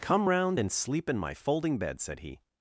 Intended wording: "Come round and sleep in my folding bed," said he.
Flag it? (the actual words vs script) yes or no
no